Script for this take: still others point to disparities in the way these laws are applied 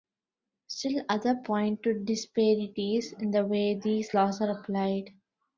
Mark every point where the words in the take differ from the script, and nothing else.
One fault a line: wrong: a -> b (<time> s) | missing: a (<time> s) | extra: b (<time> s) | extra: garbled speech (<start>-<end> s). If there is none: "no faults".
no faults